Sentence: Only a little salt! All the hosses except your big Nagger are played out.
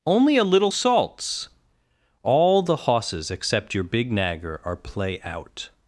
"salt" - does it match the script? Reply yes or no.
no